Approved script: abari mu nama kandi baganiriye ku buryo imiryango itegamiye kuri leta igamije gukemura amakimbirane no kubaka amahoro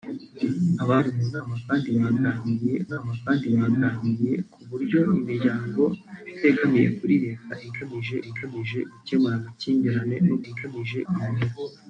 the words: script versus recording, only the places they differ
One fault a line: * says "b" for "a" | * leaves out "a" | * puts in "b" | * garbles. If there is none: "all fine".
* puts in "nama kandi baganiriye"
* puts in "igamije"
* says "igamije" for "kubaka"